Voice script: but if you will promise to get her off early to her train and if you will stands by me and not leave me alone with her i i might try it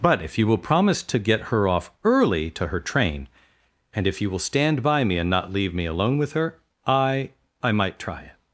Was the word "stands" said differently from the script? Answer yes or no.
yes